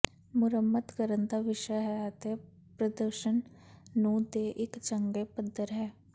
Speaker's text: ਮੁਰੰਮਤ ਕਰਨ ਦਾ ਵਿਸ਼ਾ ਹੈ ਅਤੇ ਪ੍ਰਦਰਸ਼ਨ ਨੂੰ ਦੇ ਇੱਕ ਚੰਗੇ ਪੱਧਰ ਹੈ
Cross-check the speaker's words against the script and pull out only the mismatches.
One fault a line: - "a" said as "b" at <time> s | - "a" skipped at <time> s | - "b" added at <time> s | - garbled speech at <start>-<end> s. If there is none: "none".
none